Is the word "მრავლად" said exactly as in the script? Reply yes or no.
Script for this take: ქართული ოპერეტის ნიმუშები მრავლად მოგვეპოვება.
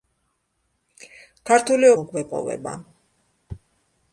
no